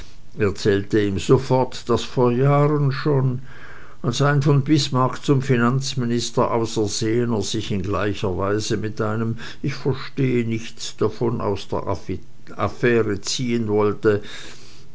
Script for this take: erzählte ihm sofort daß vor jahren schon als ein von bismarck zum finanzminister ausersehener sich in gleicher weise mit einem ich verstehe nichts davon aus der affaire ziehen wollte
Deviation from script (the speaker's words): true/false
false